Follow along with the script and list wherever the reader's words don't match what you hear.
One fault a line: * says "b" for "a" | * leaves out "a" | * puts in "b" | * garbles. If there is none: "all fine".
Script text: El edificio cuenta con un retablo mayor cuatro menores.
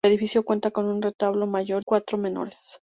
all fine